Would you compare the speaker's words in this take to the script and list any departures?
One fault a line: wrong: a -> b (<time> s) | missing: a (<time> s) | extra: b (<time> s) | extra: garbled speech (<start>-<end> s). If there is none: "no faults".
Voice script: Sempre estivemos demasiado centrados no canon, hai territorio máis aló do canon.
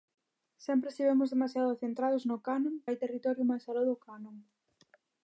no faults